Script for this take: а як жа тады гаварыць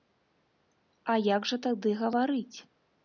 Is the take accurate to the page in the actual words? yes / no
yes